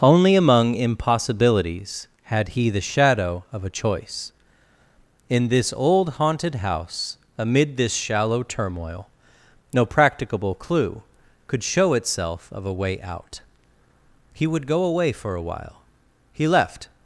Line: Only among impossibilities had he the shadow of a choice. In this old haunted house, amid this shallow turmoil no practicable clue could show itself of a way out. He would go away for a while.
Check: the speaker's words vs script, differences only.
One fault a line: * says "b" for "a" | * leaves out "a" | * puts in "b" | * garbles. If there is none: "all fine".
* puts in "He left"